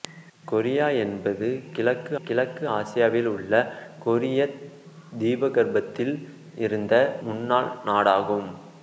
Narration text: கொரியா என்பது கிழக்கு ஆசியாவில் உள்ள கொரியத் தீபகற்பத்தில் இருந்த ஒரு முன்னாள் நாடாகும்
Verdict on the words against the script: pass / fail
fail